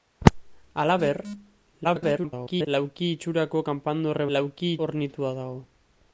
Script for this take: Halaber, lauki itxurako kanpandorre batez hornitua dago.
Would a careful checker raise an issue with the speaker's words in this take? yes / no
yes